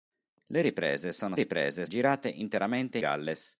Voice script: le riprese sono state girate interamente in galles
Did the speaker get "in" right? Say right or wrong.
wrong